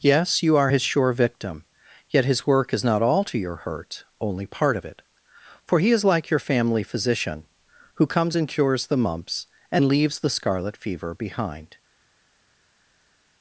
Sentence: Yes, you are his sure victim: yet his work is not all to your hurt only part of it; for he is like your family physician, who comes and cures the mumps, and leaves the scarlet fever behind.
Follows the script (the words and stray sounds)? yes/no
yes